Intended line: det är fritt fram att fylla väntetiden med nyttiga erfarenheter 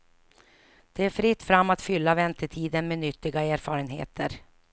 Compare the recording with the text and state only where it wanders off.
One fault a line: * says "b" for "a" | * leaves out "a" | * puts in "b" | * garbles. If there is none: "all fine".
all fine